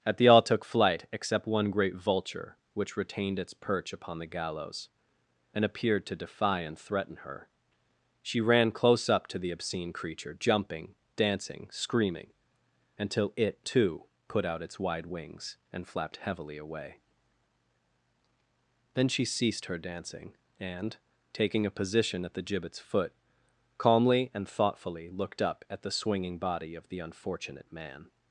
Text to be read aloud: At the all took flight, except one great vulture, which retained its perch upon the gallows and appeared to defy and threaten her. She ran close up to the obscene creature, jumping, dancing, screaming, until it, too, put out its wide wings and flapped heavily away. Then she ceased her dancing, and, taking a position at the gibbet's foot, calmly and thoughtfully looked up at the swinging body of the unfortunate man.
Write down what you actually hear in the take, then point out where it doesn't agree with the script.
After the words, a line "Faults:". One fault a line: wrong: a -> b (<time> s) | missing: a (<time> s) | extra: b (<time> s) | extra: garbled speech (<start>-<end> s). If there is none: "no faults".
At the all took flight, except one great vulture, which retained its perch upon the gallows and appeared to defy and threaten her. She ran close up to the obscene creature, jumping, dancing, screaming, until it, too, put out its wide wings and flapped heavily away. Then she ceased her dancing, and, taking a position at the gibbet's foot, calmly and thoughtfully looked up at the swinging body of the unfortunate man.
Faults:
no faults